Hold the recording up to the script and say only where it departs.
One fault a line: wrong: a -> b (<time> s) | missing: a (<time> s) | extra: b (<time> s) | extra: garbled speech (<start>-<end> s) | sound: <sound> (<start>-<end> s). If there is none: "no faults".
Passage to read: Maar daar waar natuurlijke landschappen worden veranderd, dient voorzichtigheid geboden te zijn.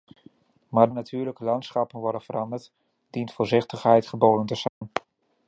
missing: daar waar (0.9 s)
sound: dropout (4.7-4.8 s)